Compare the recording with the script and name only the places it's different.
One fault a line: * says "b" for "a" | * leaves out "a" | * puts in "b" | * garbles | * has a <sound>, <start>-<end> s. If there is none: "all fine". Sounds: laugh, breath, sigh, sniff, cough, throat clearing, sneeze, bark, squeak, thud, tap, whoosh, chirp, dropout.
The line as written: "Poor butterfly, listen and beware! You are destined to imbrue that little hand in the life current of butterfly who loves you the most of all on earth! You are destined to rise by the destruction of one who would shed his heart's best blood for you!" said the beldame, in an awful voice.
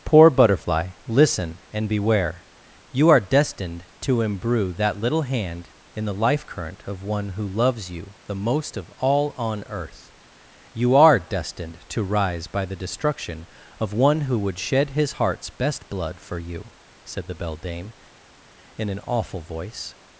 * says "one" for "butterfly"